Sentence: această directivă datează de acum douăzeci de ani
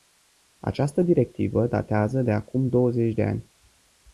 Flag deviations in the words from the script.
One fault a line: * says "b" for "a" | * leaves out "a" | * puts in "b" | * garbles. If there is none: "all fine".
all fine